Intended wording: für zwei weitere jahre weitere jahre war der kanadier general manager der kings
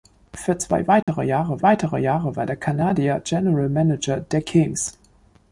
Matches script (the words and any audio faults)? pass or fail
fail